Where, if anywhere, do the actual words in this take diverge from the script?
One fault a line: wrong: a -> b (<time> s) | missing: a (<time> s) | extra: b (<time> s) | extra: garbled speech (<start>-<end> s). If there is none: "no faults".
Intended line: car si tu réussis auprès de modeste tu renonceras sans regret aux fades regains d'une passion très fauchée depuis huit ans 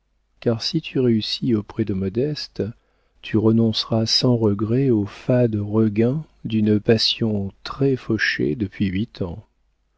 no faults